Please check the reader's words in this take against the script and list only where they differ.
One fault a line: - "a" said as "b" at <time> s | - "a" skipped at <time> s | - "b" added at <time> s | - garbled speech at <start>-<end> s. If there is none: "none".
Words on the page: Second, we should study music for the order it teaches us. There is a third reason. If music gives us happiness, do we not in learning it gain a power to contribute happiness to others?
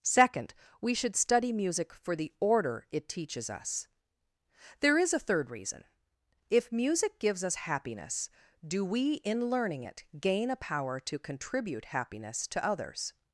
- "not" skipped at 9.2 s